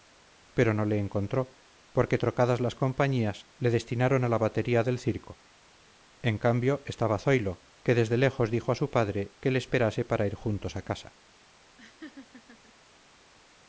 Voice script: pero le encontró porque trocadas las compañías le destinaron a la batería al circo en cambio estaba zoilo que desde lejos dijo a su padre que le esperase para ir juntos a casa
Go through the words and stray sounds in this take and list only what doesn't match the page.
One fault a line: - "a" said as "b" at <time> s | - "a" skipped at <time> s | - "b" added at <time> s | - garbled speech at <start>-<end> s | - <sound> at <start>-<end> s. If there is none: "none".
- "no" added at 0.7 s
- "al" said as "del" at 4.8 s
- laugh at 11.8-12.7 s